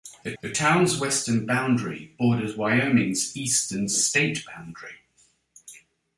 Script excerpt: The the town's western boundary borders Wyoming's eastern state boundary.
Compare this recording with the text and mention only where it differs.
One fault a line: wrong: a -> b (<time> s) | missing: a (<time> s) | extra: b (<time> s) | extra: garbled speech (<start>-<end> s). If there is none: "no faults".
no faults